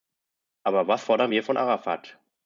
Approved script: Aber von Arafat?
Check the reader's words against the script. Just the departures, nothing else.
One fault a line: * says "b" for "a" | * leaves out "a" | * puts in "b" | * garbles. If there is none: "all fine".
* puts in "was fordern wir"